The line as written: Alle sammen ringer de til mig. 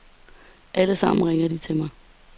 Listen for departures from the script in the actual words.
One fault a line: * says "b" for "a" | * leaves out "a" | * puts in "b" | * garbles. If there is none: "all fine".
all fine